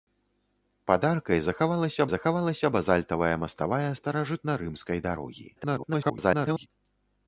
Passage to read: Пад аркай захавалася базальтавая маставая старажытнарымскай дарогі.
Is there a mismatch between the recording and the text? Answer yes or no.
yes